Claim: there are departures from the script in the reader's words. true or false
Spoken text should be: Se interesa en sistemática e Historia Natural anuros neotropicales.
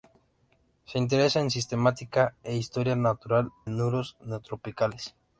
false